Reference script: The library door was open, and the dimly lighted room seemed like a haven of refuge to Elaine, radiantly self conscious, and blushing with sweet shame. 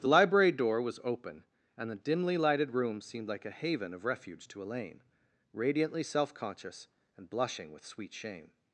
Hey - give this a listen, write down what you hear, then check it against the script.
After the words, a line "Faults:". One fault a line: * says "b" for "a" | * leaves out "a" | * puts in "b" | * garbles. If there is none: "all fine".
The library door was open, and the dimly lighted room seemed like a haven of refuge to Elaine, radiantly self conscious, and blushing with sweet shame.
Faults:
all fine